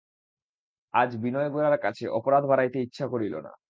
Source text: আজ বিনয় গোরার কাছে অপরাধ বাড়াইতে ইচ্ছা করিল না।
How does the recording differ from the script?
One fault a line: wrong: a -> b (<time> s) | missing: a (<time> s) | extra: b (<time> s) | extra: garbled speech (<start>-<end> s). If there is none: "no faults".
no faults